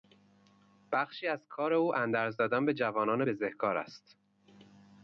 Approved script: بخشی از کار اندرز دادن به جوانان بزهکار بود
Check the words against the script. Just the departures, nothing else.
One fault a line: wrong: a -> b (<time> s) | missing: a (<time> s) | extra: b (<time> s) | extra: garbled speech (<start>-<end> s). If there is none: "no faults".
extra: او (1.7 s)
wrong: بود -> است (3.8 s)